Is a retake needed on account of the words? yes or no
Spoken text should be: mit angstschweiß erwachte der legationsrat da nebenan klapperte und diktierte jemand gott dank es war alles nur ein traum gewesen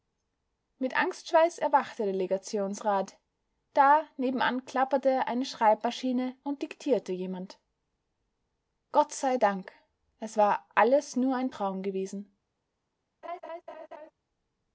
yes